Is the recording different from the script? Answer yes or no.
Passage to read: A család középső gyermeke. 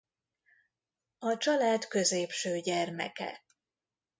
no